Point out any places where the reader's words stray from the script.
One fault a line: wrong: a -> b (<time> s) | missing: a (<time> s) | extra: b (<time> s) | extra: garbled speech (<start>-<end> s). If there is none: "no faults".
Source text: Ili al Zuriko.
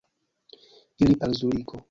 no faults